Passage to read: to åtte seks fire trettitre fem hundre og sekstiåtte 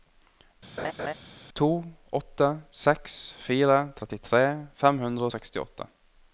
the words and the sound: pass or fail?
fail